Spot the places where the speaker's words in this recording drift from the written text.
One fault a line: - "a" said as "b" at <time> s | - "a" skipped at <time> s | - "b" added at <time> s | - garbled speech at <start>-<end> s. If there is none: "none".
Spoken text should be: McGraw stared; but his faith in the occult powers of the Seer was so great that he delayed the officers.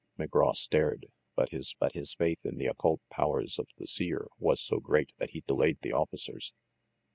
- "but his" added at 1.8 s